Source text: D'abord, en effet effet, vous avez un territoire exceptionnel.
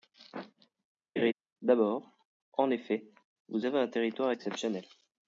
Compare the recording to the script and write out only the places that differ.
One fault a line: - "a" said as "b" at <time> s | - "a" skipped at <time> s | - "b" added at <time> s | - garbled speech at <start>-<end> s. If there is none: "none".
- "effet" skipped at 3.1 s